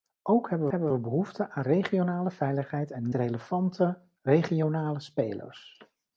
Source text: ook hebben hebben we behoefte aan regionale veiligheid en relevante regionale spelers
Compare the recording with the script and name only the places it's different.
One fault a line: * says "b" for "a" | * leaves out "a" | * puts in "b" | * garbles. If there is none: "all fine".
all fine